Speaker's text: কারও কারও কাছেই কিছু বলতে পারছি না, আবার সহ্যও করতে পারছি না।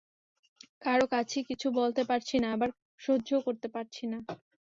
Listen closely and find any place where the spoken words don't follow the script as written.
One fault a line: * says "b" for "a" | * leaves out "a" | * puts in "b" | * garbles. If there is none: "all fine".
* leaves out "কারও"